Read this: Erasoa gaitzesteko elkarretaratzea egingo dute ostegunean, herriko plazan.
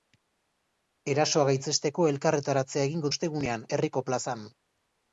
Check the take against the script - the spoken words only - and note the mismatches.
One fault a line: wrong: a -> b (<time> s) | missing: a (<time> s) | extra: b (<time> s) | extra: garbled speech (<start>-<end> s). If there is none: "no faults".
missing: dute (3.1 s)